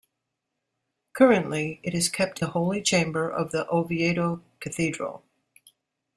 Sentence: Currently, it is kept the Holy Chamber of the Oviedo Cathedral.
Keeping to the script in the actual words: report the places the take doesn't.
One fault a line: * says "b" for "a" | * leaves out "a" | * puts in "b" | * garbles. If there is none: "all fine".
all fine